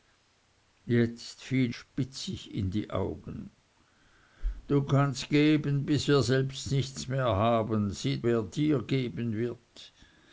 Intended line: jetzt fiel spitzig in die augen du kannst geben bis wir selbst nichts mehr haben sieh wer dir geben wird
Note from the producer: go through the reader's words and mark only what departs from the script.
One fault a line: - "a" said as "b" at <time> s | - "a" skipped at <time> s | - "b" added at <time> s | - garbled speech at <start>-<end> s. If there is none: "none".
none